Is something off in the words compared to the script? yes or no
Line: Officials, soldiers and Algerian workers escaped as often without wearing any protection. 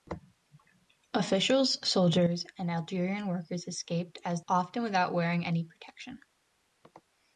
no